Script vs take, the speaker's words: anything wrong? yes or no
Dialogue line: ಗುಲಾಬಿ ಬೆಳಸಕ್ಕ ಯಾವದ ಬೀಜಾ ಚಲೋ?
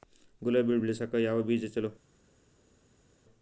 no